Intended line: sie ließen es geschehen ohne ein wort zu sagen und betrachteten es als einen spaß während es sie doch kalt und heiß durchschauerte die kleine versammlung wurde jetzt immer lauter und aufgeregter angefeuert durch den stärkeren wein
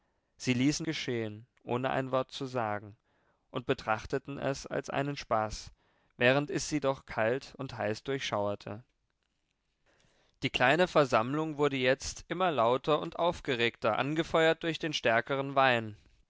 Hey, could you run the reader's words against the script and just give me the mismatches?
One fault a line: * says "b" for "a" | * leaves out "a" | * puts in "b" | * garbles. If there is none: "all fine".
* leaves out "es"